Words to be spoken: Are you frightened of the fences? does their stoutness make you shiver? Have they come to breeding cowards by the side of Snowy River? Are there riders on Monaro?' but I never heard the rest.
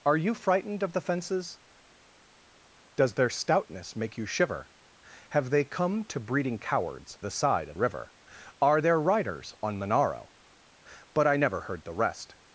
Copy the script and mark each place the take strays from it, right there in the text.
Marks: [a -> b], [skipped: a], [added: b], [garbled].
Are you frightened of the fences? does their stoutness make you shiver? Have they come to breeding cowards [skipped: by] the side of [skipped: Snowy] River? Are there riders on Monaro?' but I never heard the rest.